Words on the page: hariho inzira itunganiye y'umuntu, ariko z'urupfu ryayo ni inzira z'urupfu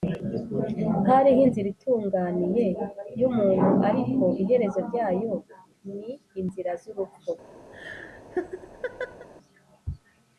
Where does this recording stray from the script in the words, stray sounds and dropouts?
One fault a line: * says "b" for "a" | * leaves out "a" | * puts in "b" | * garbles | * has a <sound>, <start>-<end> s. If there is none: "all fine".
* says "iherezo" for "z'urupfu"
* has a laugh, 7.7-9.3 s